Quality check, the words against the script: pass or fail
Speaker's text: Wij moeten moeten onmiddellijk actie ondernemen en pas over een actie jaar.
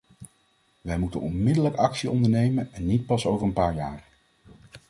fail